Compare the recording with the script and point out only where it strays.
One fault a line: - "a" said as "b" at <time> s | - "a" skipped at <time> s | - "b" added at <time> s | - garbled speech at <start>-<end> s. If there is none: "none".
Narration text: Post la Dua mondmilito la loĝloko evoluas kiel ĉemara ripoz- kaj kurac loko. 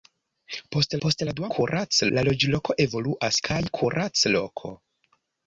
- "post" added at 1.0 s
- "mondmilito" said as "kurac" at 1.6 s
- "kiel ĉemara ripoz" skipped at 3.4 s